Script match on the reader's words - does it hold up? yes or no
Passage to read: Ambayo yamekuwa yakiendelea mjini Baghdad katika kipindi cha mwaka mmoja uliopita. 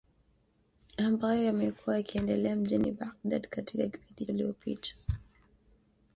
no